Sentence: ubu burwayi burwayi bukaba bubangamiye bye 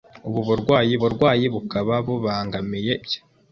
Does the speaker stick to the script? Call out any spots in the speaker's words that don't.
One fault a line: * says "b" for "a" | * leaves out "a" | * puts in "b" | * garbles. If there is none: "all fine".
all fine